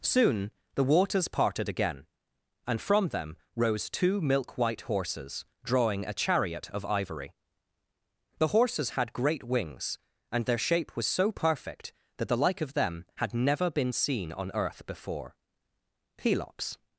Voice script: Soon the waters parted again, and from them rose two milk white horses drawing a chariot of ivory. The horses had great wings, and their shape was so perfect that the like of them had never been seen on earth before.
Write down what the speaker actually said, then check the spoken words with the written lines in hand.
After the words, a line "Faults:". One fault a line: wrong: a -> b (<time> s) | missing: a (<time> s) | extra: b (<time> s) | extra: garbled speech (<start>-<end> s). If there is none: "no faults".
Soon the waters parted again, and from them rose two milk white horses drawing a chariot of ivory. The horses had great wings, and their shape was so perfect that the like of them had never been seen on earth before. Pelops
Faults:
extra: Pelops (16.2 s)